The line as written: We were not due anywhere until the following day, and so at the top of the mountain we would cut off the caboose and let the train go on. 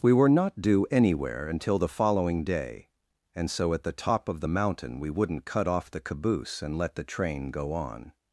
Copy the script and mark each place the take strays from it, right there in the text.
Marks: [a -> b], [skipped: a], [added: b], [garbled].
We were not due anywhere until the following day, and so at the top of the mountain we [would -> wouldn't] cut off the caboose and let the train go on.